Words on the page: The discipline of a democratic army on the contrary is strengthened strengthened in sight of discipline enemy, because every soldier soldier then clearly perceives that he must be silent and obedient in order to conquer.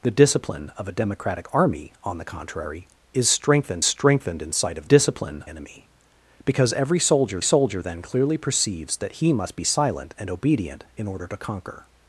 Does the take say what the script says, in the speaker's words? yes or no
yes